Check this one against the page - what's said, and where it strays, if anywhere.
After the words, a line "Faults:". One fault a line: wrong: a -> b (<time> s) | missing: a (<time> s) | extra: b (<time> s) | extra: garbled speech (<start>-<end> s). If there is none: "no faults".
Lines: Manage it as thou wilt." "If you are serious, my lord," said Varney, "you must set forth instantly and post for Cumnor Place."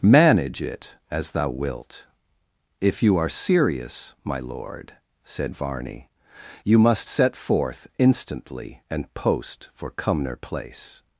Manage it as thou wilt." "If you are serious, my lord," said Varney, "you must set forth instantly and post for Cumnor Place."
Faults:
no faults